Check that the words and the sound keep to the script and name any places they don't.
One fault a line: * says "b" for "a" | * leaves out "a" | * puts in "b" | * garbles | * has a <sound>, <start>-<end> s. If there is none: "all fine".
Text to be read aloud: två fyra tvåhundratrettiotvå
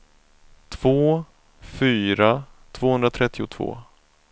all fine